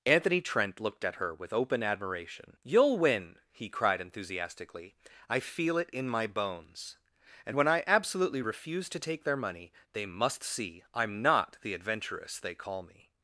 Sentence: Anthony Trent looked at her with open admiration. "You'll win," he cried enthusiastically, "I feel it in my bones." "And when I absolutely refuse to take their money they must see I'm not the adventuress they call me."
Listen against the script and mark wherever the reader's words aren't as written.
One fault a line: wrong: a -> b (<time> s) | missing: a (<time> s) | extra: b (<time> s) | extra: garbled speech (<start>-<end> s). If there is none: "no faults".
no faults